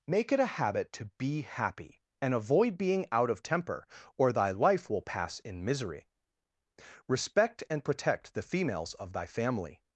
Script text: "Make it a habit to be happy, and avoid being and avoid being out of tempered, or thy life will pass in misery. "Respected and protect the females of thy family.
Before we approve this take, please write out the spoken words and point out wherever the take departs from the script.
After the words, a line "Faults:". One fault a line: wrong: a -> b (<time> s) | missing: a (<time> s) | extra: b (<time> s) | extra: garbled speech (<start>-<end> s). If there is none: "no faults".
"Make it a habit to be happy, and avoid being out of temper, or thy life will pass in misery. "Respect and protect the females of thy family.
Faults:
missing: and avoid being (3.0 s)
wrong: tempered -> temper (3.4 s)
wrong: Respected -> Respect (7.1 s)